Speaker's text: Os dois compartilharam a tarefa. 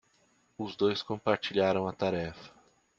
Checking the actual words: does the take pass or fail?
pass